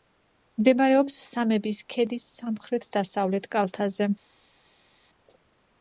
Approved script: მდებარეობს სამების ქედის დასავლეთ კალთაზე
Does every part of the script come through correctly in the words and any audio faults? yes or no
no